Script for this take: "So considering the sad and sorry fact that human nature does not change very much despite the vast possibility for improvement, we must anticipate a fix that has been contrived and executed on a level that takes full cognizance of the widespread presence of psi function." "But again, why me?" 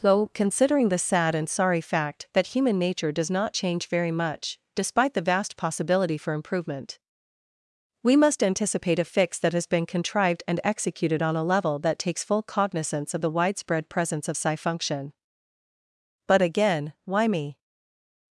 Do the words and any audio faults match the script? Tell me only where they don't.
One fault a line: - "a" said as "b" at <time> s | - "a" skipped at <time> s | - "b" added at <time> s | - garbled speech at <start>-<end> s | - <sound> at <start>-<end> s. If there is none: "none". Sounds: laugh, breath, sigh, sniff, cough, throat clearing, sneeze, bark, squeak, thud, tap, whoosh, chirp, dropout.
- "So" said as "Though" at 0.0 s